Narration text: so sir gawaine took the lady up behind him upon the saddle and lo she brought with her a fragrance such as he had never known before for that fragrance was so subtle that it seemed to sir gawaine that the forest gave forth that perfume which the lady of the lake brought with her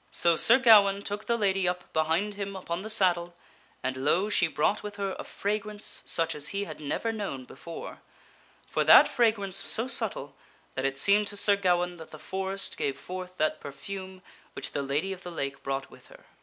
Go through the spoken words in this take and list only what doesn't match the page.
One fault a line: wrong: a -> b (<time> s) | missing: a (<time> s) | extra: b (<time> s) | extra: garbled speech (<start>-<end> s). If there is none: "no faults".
missing: was (9.6 s)